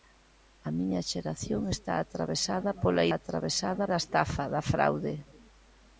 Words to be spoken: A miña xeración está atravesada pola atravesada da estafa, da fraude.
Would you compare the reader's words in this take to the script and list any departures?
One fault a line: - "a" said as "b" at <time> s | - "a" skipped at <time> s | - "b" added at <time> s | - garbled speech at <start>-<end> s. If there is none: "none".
none